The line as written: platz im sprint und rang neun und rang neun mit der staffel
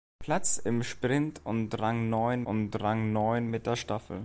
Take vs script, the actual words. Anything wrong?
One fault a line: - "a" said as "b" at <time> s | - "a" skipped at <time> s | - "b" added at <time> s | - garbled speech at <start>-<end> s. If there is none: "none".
none